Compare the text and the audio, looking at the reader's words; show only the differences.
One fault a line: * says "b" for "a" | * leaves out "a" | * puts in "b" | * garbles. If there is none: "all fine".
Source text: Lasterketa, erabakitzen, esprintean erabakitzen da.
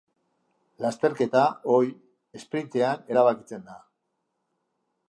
* says "ohi" for "erabakitzen"